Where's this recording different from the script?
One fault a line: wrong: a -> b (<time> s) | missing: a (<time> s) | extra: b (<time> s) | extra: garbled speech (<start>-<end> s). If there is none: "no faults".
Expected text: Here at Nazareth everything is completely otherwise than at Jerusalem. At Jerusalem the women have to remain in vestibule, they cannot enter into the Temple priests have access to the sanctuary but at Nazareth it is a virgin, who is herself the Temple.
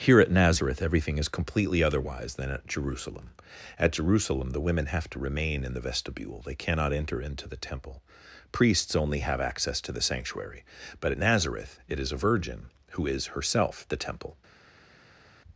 extra: the (5.8 s)
extra: only (8.9 s)